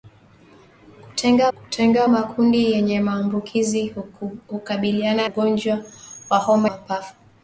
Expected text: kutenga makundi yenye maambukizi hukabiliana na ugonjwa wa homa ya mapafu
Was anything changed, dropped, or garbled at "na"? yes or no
yes